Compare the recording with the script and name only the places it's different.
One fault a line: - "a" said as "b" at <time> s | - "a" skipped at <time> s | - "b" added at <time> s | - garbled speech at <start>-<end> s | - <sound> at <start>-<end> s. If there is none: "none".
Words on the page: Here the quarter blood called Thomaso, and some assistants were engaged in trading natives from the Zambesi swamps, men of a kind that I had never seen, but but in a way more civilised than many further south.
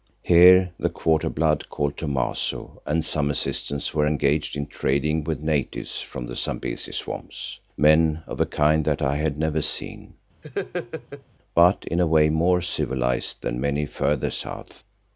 - "with" added at 5.2 s
- laugh at 10.4-11.2 s
- "but" skipped at 11.8 s